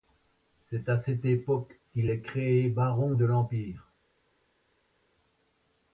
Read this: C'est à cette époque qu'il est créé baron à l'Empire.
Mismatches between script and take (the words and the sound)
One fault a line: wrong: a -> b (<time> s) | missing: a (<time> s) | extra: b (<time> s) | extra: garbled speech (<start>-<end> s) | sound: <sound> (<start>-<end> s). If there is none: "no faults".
wrong: à -> de (3.1 s)